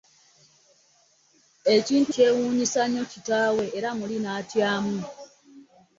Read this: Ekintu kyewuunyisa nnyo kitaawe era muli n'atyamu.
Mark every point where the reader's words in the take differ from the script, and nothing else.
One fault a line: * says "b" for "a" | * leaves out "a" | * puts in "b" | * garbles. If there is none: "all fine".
all fine